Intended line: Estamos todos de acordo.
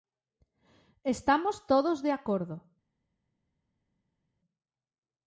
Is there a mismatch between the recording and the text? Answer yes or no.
no